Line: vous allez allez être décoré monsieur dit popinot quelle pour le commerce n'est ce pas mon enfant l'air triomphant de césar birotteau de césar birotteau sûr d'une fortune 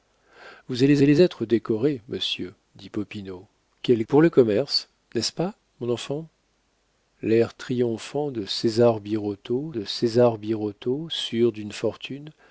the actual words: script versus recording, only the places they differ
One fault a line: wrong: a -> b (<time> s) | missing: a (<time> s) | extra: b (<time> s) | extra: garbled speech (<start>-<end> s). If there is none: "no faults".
no faults